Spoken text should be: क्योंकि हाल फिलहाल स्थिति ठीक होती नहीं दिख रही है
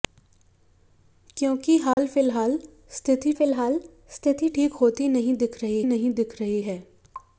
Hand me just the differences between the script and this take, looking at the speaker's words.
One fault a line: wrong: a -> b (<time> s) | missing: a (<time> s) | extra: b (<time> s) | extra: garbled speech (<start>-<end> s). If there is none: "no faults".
extra: फिलहाल स्थिति (3.3 s)
extra: नहीं दिख रही (5.8 s)